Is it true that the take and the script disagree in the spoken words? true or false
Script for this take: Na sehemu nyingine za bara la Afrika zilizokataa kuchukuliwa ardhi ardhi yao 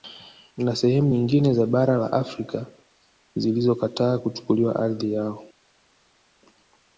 true